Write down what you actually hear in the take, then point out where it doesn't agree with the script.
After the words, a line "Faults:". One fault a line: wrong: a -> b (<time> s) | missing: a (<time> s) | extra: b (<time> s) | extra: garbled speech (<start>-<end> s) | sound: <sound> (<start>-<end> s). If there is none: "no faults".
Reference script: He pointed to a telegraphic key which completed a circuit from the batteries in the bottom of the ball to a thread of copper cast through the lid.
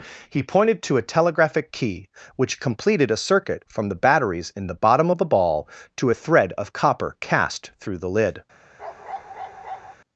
He pointed to a telegraphic key which completed a circuit from the batteries in the bottom of the ball to a thread of copper cast through the lid.
Faults:
sound: bark (8.8-10.0 s)